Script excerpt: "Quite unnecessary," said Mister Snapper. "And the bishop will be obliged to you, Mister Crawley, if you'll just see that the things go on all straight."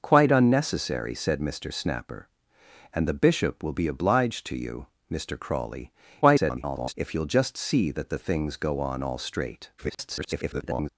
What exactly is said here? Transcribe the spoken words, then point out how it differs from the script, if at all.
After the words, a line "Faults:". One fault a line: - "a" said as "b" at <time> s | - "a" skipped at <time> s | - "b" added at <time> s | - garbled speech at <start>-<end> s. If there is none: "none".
"Quite unnecessary," said Mister Snapper. "And the bishop will be obliged to you, Mister Crawley, [garbled] if you'll just see that the things go on all straight." [garbled]
Faults:
- garbled speech at 6.2-6.9 s
- garbled speech at 9.8-10.9 s